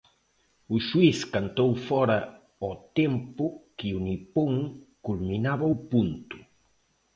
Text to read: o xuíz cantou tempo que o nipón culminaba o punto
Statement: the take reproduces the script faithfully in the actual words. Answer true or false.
false